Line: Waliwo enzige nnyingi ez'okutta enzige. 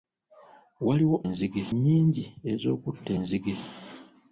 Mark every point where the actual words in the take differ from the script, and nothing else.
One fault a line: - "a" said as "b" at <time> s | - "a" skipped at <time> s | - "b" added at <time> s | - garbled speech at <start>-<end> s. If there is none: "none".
none